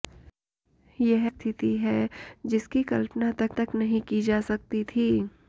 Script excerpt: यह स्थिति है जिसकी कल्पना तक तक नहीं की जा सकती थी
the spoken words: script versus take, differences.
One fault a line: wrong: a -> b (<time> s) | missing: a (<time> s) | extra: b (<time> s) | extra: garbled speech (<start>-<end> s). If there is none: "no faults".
no faults